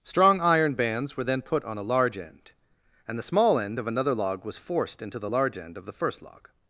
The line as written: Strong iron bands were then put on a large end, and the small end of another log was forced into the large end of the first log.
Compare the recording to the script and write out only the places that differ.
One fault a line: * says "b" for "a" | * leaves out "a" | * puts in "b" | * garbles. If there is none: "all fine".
all fine